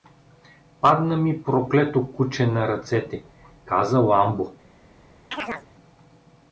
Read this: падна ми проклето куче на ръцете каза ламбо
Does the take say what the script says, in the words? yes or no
yes